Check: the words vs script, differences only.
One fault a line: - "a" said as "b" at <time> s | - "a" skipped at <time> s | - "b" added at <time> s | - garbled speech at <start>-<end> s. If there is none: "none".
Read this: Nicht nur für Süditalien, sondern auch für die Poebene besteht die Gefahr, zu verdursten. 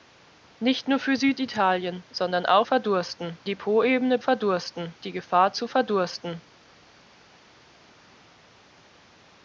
- "für" said as "verdursten" at 2.6 s
- "besteht" said as "verdursten" at 4.2 s